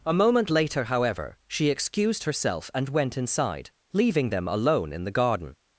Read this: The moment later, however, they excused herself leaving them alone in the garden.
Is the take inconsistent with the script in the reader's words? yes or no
yes